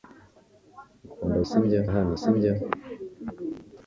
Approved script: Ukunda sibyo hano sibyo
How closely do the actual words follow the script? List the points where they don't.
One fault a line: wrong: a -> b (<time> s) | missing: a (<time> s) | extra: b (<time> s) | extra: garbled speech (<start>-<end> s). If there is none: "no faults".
no faults